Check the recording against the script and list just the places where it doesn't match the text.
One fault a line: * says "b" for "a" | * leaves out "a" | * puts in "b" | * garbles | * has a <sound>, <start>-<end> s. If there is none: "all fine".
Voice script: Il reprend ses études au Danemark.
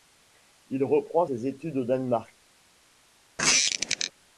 * has a squeak, 3.4-4.1 s